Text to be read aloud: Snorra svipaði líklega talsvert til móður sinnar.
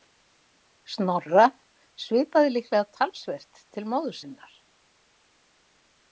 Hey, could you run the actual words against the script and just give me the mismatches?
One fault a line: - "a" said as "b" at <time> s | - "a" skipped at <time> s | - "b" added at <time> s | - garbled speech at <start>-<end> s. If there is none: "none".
none